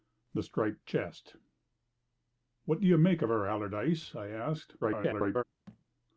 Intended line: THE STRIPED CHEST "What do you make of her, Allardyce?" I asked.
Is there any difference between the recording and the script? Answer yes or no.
yes